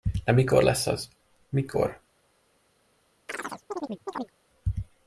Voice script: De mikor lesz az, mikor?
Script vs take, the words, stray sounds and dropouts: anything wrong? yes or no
yes